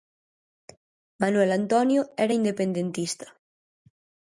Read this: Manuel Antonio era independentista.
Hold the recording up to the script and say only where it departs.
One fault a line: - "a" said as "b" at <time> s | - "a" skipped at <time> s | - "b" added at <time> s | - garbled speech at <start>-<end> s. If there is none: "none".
none